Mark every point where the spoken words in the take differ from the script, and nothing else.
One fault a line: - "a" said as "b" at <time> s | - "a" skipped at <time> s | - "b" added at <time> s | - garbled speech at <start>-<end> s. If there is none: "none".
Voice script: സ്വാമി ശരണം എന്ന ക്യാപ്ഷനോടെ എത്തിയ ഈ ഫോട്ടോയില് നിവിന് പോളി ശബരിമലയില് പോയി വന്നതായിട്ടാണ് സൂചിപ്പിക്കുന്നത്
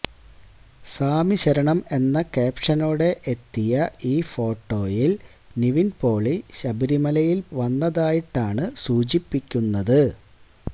- "പോയി" skipped at 7.5 s